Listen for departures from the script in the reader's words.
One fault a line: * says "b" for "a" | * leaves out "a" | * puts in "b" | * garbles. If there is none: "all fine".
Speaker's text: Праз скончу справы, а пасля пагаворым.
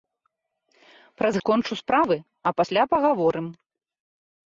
all fine